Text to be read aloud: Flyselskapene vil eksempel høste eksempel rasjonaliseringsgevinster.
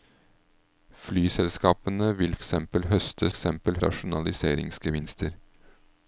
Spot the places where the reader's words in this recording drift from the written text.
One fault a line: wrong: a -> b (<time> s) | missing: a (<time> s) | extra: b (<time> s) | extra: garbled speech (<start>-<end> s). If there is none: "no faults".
no faults